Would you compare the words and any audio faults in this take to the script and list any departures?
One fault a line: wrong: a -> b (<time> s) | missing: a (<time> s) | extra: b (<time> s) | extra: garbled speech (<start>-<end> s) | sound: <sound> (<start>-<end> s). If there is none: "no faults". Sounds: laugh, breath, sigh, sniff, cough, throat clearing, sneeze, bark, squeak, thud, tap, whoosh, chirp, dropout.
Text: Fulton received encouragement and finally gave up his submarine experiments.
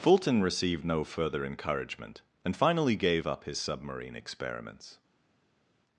extra: no further (0.8 s)